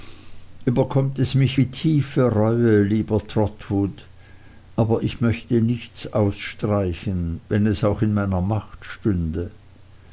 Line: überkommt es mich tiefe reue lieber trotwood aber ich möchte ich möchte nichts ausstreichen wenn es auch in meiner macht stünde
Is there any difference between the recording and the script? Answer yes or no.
yes